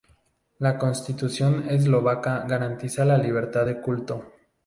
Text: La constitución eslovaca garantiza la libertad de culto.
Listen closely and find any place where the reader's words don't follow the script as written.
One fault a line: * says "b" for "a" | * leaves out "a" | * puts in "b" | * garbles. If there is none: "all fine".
all fine